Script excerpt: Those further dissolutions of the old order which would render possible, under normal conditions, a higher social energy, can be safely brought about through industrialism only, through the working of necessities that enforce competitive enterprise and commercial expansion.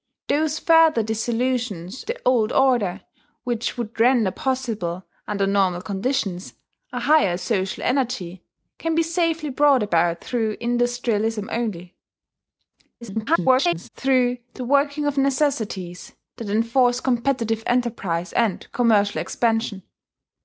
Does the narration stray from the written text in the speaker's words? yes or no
yes